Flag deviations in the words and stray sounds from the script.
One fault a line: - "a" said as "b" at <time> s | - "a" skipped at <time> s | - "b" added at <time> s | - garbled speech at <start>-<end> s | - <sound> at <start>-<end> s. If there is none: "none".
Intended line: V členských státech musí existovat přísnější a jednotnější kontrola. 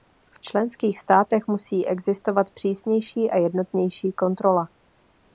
none